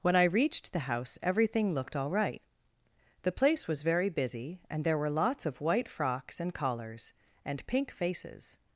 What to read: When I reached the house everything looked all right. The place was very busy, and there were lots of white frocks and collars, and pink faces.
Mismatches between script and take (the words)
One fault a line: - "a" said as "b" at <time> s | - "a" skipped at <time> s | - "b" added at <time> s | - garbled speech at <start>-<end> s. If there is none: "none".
none